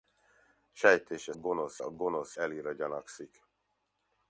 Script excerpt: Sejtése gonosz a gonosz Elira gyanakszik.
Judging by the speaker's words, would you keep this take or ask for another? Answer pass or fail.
pass